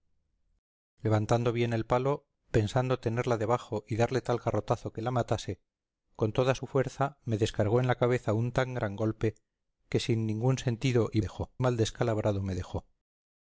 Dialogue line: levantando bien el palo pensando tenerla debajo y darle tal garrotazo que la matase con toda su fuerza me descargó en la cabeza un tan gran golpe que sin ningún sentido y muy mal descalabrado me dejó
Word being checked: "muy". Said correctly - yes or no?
no